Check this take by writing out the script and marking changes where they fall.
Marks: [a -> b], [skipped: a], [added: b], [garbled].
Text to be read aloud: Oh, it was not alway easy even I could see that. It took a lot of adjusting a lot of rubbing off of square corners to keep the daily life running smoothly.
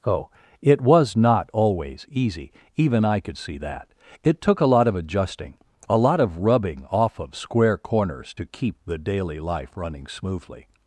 Oh, it was not [alway -> always] easy even I could see that. It took a lot of adjusting a lot of rubbing off of square corners to keep the daily life running smoothly.